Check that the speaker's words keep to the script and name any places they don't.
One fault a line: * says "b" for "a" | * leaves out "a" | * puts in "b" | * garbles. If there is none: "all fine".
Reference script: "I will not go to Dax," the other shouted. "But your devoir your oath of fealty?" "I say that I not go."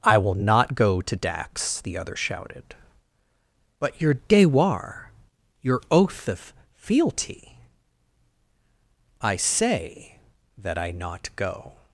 all fine